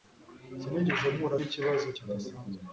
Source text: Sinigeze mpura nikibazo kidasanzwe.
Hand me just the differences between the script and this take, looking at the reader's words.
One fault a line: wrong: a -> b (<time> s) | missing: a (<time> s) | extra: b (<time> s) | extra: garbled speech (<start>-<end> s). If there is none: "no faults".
no faults